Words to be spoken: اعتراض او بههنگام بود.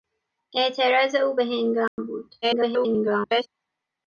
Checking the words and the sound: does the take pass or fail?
fail